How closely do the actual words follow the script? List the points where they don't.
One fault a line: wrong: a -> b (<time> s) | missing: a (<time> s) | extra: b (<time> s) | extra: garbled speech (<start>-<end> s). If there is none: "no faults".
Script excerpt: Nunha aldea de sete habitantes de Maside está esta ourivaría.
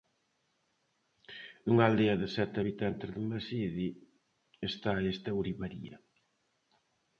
no faults